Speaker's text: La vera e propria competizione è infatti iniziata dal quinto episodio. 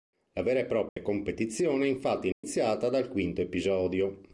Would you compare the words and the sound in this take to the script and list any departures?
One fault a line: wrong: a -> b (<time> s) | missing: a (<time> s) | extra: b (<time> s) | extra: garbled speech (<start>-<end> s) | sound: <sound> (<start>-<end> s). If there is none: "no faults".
sound: dropout (0.9-1.0 s)
sound: dropout (2.3-2.4 s)